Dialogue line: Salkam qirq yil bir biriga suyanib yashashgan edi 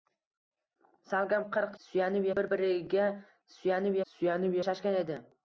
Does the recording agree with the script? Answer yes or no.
no